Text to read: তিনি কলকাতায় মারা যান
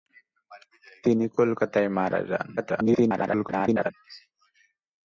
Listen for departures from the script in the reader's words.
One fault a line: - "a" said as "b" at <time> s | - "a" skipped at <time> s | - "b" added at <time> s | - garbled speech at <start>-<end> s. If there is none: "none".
- garbled speech at 2.6-3.9 s